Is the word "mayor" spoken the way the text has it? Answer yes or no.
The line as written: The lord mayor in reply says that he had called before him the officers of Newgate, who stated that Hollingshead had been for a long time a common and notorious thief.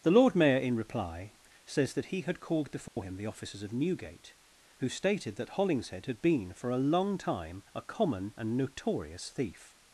yes